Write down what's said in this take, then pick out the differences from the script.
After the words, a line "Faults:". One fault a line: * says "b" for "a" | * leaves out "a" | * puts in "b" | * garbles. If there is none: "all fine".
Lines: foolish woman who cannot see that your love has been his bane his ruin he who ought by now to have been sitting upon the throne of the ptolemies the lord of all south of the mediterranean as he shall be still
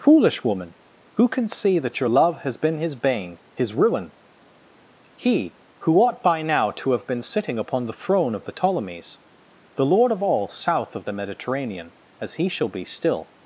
foolish woman who can see that your love has been his bane his ruin he who ought by now to have been sitting upon the throne of the ptolemies the lord of all south of the mediterranean as he shall be still
Faults:
* says "can" for "cannot"